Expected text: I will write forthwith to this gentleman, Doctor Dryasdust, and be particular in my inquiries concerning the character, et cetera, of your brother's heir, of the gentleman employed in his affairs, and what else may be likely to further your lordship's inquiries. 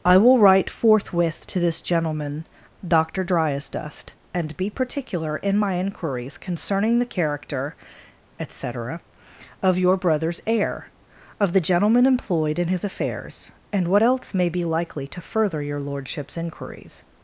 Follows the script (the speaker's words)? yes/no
yes